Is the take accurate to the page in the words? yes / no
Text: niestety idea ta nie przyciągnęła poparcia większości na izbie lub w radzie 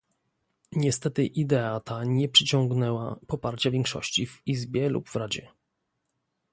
no